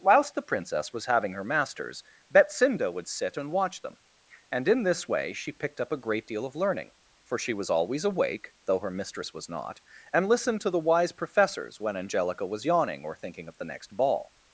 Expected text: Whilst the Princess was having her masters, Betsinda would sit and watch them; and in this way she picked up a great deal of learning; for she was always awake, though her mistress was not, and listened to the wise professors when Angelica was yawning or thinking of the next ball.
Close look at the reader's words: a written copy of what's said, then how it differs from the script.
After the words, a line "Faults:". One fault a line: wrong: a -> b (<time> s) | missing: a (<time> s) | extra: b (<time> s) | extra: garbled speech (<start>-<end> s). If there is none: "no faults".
Whilst the Princess was having her masters, Betsinda would sit and watch them; and in this way she picked up a great deal of learning; for she was always awake, though her mistress was not, and listened to the wise professors when Angelica was yawning or thinking of the next ball.
Faults:
no faults